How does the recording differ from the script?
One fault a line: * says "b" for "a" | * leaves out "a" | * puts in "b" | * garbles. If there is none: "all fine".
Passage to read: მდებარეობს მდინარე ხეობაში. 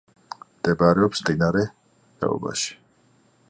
all fine